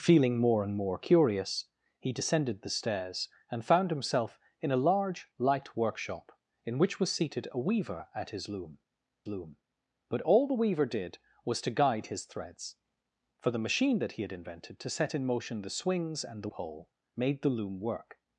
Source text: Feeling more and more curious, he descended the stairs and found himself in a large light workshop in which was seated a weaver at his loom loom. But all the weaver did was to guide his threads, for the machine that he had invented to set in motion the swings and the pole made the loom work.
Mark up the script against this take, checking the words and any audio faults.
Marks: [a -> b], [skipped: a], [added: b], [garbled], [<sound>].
Feeling more and more curious, he descended the stairs and found himself in a large light workshop in which was seated a weaver at his loom loom. But all the weaver did was to guide his threads, for the machine that he had invented to set in motion the swings and the pole made the loom work.